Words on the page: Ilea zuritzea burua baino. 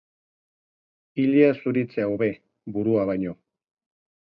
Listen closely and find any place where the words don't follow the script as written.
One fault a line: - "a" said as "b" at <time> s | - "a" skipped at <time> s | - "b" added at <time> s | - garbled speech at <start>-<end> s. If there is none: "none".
- "hobe" added at 2.1 s